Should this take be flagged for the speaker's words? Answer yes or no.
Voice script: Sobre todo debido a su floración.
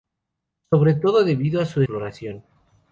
no